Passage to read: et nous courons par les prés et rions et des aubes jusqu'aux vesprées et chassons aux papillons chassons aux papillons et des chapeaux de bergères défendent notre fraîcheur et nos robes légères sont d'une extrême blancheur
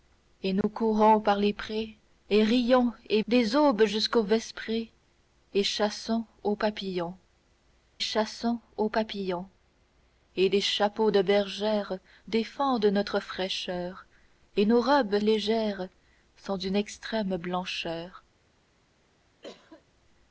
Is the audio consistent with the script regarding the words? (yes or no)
yes